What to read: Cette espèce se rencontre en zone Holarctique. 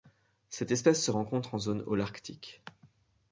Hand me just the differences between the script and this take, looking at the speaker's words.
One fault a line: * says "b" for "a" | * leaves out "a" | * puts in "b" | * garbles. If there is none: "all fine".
all fine